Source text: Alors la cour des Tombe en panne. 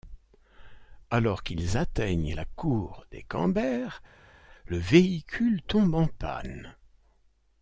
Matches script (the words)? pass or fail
fail